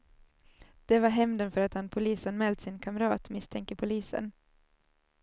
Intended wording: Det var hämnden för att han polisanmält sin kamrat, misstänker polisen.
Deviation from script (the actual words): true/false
false